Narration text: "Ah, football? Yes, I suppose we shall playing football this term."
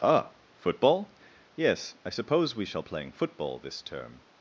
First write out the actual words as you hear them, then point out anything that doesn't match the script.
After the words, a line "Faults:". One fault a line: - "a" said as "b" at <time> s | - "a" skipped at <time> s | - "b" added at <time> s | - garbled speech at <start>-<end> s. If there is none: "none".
"Ah, football? Yes, I suppose we shall playing football this term."
Faults:
none